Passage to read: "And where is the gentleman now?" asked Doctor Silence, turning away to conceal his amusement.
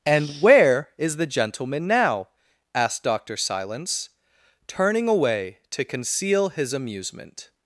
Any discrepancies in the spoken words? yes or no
no